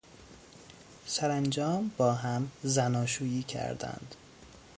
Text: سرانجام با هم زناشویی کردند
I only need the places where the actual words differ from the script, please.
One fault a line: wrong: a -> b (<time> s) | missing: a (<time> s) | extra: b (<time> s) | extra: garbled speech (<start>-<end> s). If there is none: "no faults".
no faults